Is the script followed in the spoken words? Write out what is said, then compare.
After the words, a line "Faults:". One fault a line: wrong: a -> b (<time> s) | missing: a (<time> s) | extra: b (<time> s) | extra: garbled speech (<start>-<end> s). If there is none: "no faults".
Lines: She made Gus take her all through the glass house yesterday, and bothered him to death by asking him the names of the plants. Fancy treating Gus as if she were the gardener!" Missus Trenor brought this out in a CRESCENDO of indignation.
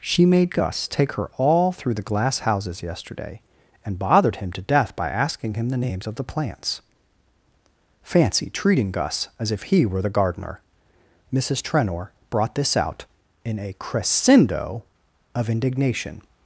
She made Gus take her all through the glass houses yesterday, and bothered him to death by asking him the names of the plants. Fancy treating Gus as if he were the gardener!" Missus Trenor brought this out in a CRESCENDO of indignation.
Faults:
wrong: house -> houses (2.4 s)
wrong: she -> he (9.6 s)